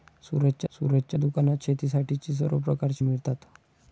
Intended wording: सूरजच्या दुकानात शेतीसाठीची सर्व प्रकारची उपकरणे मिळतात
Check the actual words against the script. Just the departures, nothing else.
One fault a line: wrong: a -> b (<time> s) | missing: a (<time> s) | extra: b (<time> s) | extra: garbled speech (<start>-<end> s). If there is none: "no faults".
extra: सूरजच्या (0.7 s)
missing: उपकरणे (3.0 s)